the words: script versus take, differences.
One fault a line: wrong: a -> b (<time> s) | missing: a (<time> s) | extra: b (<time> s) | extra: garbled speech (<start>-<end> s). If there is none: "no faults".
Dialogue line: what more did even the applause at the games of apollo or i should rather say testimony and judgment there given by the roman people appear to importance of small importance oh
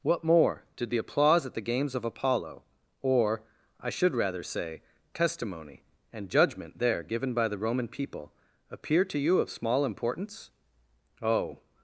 missing: even (0.9 s)
wrong: importance -> you (9.2 s)